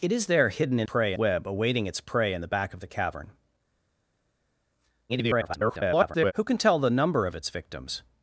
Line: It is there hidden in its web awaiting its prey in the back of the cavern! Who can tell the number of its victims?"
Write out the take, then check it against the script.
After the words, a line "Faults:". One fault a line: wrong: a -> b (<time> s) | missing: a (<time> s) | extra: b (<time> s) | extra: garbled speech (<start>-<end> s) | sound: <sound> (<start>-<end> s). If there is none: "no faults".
It is there hidden in prey web awaiting its prey in the back of the cavern! [garbled] Who can tell the number of its victims?"
Faults:
wrong: its -> prey (0.8 s)
extra: garbled speech (5.1-6.3 s)